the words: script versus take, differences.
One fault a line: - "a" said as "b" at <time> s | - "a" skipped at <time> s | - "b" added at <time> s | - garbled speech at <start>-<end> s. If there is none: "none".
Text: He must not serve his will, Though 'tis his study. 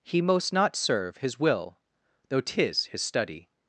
- "must" said as "most" at 0.2 s